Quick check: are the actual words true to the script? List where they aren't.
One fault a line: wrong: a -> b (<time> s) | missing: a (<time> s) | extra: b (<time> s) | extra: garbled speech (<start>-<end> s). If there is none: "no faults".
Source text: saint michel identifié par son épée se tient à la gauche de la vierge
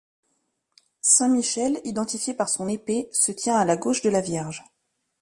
no faults